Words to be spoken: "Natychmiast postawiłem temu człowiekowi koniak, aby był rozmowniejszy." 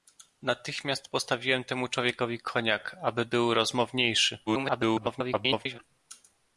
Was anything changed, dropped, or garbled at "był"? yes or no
no